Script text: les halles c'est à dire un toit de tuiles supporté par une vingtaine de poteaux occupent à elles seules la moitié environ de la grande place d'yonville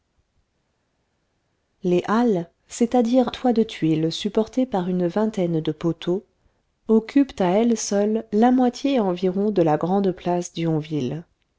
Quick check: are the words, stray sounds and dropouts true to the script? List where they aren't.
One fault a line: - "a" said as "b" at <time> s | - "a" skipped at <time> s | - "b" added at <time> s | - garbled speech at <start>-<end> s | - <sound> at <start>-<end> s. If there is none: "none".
- "un" skipped at 3.3 s